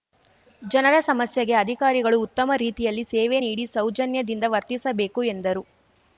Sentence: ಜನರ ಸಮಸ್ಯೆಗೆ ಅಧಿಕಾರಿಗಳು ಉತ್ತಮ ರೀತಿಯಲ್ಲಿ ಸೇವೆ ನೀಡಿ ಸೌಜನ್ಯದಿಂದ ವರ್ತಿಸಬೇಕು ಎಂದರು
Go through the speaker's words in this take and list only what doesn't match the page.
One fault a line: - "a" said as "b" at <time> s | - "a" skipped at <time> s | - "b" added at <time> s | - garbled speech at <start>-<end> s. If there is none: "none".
none